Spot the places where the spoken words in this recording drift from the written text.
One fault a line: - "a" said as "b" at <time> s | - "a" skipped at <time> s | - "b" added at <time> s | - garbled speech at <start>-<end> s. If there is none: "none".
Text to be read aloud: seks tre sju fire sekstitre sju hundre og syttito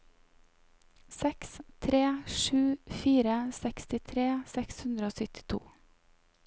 - "sju" said as "seks" at 4.5 s